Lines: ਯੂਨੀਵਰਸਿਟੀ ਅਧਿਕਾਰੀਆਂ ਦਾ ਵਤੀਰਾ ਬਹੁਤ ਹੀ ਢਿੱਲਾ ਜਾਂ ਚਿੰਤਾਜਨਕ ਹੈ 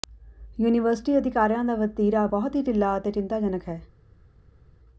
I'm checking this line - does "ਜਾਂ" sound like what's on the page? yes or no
no